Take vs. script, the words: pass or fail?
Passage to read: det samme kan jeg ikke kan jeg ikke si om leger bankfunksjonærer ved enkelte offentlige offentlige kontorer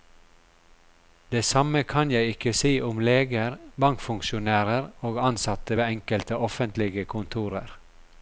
fail